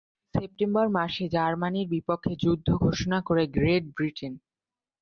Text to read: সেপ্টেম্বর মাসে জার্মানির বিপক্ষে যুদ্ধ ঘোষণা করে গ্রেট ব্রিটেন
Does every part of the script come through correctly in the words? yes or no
yes